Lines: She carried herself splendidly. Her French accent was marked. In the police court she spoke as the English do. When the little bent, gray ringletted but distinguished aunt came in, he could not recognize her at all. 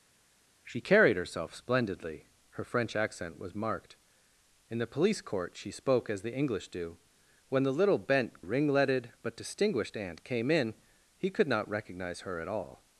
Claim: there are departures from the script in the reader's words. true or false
true